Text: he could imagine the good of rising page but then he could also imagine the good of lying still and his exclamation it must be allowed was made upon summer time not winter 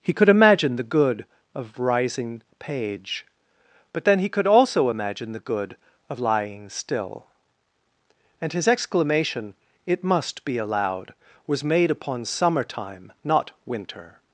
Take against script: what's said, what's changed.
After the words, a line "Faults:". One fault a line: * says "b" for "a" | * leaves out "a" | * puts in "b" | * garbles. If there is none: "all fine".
he could imagine the good of rising page but then he could also imagine the good of lying still and his exclamation it must be allowed was made upon summer time not winter
Faults:
all fine